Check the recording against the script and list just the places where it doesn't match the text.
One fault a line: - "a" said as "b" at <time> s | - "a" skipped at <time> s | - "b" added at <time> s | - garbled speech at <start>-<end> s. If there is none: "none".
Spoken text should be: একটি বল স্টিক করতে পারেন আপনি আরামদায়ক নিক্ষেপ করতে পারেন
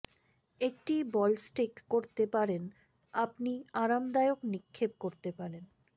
none